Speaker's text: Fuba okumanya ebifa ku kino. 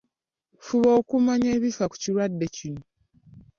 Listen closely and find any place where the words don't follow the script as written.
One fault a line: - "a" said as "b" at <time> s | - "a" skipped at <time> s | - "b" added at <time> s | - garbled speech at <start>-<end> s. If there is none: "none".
- "kirwadde" added at 2.0 s